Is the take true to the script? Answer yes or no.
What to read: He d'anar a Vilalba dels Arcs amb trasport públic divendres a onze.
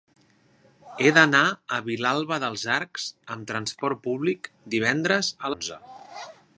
yes